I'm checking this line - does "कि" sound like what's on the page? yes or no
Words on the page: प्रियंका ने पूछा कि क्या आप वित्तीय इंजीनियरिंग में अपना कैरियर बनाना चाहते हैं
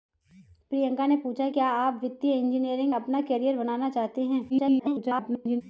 no